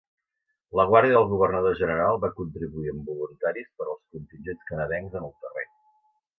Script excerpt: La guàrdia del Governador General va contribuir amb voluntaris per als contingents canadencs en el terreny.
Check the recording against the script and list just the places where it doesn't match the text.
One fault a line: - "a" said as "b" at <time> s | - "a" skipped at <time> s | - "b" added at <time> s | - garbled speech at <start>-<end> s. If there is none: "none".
none